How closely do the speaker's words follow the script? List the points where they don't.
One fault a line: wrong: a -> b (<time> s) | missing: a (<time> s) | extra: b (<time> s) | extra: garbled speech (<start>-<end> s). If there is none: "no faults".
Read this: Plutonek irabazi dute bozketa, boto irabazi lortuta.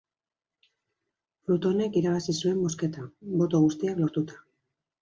wrong: dute -> zuen (2.4 s)
wrong: irabazi -> guztiak (3.7 s)